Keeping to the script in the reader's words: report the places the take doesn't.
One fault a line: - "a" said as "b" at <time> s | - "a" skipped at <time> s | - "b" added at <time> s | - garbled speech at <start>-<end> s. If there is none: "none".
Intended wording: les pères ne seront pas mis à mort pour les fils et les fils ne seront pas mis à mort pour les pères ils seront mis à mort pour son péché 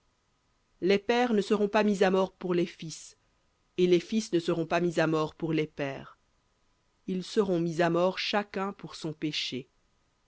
- "chacun" added at 8.2 s